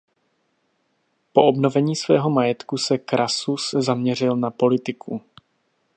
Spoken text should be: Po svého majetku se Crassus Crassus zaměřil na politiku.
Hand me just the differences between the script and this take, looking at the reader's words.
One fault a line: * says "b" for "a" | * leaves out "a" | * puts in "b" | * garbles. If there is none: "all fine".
* puts in "obnovení"
* leaves out "Crassus"